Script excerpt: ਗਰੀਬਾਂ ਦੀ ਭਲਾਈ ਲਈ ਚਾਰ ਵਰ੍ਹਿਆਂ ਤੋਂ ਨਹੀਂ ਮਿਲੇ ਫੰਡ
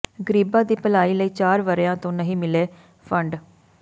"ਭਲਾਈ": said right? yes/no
yes